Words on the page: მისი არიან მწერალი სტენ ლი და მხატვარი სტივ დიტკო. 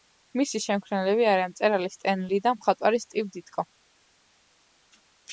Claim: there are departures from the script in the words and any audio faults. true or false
true